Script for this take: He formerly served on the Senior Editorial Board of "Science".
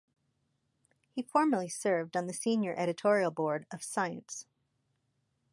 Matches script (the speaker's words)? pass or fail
pass